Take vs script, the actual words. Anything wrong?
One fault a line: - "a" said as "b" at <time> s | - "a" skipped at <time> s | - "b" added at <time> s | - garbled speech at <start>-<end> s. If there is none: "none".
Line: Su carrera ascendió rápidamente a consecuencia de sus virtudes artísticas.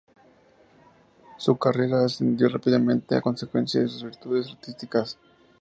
none